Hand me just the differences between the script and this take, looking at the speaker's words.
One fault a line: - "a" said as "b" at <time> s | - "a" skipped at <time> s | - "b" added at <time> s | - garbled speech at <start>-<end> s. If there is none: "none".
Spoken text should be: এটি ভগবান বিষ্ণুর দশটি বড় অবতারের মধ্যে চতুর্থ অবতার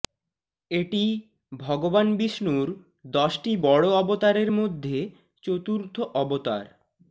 none